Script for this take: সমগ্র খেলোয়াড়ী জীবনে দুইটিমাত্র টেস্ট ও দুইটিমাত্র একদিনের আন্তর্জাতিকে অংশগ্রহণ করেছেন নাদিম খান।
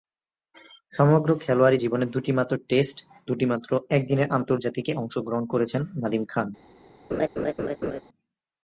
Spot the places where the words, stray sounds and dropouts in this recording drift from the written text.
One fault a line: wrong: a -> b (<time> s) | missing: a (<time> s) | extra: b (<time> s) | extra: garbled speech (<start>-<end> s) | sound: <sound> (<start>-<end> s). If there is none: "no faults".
missing: ও (3.0 s)
sound: laugh (7.1-8.0 s)